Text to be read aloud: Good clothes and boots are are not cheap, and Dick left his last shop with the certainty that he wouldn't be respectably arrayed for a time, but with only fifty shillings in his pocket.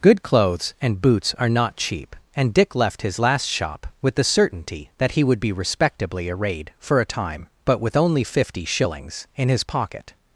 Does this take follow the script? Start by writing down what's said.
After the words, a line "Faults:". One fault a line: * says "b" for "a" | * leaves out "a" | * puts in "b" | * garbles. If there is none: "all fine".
Good clothes and boots are not cheap, and Dick left his last shop with the certainty that he would be respectably arrayed for a time, but with only fifty shillings in his pocket.
Faults:
* leaves out "are"
* says "would" for "wouldn't"